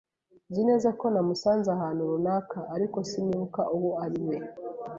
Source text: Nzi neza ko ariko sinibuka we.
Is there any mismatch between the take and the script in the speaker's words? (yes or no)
yes